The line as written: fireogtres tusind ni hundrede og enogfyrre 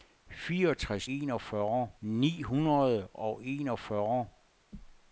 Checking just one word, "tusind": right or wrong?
wrong